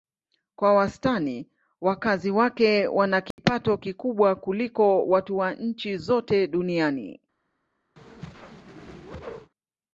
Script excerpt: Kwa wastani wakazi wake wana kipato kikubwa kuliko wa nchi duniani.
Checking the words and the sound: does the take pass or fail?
fail